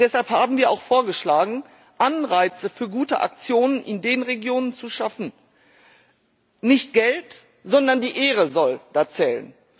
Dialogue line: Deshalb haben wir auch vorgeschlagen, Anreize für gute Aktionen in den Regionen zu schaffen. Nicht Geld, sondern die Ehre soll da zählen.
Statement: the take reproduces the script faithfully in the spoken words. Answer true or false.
true